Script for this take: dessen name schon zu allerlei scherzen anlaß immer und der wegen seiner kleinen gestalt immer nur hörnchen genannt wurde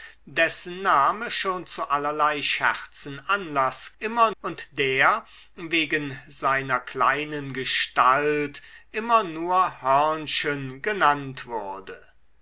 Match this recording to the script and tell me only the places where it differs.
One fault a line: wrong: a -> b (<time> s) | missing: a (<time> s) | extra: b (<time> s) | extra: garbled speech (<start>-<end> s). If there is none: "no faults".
no faults